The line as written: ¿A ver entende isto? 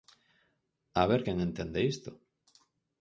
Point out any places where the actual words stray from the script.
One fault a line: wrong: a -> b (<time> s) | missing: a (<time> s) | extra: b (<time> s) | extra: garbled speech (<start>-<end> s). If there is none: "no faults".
extra: quen (1.2 s)